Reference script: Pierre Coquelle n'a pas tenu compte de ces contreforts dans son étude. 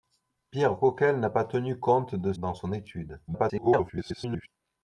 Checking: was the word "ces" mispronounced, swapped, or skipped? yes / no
yes